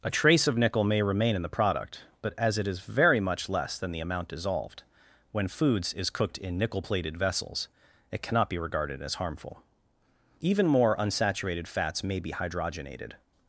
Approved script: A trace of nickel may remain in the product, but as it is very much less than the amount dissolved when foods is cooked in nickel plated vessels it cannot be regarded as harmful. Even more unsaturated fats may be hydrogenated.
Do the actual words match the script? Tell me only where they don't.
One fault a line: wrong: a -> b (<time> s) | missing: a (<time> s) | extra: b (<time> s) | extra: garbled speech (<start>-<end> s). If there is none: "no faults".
no faults